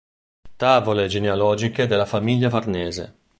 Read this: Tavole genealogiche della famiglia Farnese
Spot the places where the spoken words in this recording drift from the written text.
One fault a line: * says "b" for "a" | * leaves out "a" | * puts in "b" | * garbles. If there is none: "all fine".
all fine